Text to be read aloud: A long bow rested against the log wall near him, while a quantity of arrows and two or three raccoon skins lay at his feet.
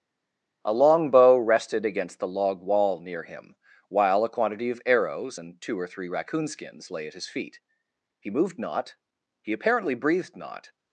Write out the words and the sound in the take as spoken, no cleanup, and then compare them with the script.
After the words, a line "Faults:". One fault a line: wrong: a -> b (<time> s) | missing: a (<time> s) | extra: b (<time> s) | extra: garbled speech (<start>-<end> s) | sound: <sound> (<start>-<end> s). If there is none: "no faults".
A long bow rested against the log wall near him, while a quantity of arrows and two or three raccoon skins lay at his feet. He moved not; he apparently breathed not
Faults:
extra: He moved not he apparently breathed not (8.2 s)